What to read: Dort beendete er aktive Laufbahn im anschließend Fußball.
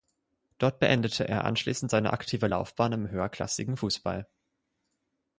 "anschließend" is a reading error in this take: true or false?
true